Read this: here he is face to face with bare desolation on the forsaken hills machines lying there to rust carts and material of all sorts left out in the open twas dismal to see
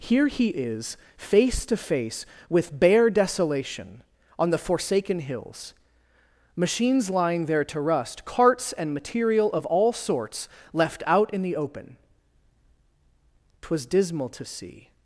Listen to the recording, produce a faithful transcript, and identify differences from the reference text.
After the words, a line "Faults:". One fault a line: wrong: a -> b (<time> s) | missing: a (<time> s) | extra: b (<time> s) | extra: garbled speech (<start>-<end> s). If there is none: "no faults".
here he is face to face with bare desolation on the forsaken hills machines lying there to rust carts and material of all sorts left out in the open twas dismal to see
Faults:
no faults